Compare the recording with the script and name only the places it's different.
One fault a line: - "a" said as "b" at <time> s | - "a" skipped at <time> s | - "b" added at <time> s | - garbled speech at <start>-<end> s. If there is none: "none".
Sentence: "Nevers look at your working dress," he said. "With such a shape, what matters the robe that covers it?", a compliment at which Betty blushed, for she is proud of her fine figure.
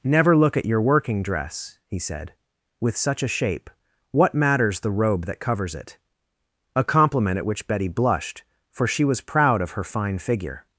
- "Nevers" said as "Never" at 0.0 s
- "is" said as "was" at 9.0 s